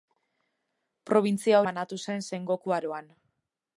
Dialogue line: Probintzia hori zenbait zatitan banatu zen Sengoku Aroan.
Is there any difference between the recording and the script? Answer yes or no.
yes